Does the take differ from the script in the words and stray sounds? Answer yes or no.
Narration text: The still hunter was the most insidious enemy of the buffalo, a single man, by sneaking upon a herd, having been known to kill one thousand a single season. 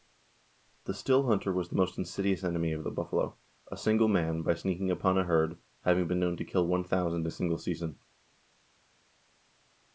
no